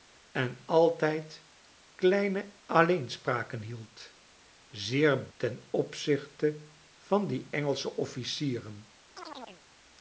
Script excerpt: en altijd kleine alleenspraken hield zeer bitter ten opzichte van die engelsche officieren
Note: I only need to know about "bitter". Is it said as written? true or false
false